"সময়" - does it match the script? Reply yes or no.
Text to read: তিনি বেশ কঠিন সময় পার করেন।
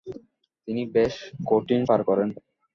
no